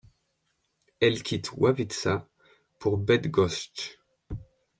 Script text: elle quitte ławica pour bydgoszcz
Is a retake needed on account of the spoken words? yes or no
no